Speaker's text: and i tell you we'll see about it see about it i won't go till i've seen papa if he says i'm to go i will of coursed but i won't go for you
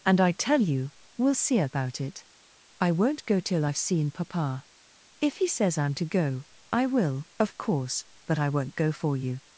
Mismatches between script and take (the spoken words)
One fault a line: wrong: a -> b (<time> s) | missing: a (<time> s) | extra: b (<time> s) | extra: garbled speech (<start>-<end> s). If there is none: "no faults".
missing: see about it (2.2 s)
wrong: coursed -> course (7.6 s)